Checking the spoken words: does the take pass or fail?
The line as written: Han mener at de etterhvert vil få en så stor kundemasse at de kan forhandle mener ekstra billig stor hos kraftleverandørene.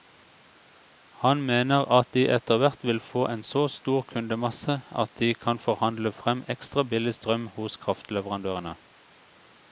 fail